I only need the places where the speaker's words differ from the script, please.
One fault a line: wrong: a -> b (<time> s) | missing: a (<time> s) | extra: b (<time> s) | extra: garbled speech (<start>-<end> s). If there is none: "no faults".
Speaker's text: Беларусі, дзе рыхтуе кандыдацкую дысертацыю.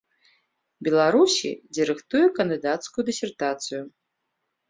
no faults